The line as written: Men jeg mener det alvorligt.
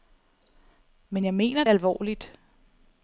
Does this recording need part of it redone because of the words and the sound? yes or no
yes